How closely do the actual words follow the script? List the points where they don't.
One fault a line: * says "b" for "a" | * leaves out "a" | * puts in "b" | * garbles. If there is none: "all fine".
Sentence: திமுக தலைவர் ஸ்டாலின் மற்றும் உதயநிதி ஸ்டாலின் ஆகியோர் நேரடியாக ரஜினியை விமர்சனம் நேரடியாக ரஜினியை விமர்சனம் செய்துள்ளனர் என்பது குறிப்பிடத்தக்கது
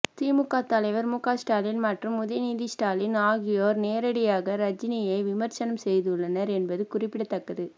* puts in "முக"
* leaves out "நேரடியாக ரஜினியை விமர்சனம்"